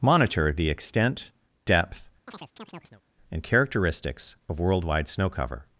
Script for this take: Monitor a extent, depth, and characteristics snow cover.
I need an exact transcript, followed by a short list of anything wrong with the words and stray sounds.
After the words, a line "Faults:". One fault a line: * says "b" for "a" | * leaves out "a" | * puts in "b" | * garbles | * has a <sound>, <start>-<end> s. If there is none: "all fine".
Monitor the extent, depth, and characteristics of worldwide snow cover.
Faults:
* says "the" for "a"
* has a chirp, 2.3-3.0 s
* puts in "of worldwide"